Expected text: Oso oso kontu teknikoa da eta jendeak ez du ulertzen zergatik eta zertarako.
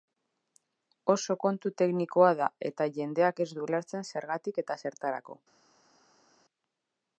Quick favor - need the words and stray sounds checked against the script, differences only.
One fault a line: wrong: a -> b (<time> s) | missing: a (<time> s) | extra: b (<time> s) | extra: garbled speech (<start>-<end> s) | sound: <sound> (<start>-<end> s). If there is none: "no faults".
missing: oso (1.4 s)